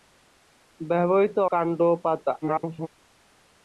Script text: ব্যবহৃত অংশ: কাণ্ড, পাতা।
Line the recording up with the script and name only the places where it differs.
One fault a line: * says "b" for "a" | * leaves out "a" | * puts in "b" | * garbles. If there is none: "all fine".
* leaves out "অংশ"
* garbles